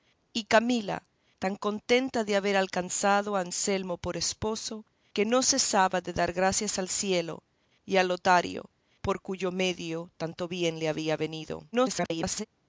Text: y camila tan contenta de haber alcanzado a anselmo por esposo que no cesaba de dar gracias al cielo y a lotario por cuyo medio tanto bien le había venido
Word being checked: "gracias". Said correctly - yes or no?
yes